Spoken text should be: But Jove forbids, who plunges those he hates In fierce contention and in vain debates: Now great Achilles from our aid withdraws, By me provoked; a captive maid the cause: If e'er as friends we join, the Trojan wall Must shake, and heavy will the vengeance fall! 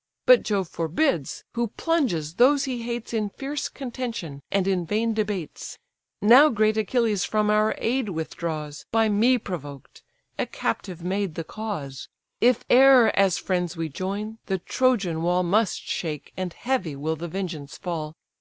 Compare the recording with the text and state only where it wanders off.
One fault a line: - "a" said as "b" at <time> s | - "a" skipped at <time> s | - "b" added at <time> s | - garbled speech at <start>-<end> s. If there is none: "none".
none